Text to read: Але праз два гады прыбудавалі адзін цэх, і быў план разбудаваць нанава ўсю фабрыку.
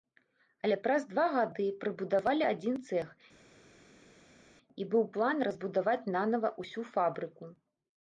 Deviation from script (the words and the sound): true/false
false